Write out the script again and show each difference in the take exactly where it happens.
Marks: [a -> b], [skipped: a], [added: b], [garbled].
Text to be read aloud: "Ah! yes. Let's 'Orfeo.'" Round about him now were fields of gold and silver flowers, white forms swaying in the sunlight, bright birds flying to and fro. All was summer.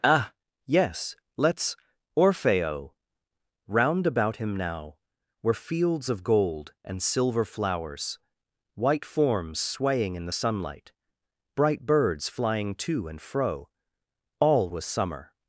"Ah! yes. Let's 'Orfeo.'" Round about him now were fields of gold and silver flowers, white forms swaying in the sunlight, bright birds flying to and fro. All was summer.